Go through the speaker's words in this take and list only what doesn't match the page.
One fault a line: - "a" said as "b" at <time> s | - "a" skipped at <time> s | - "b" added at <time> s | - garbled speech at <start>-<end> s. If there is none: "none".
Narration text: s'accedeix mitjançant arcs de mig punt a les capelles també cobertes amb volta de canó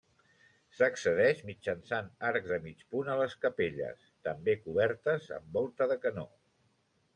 none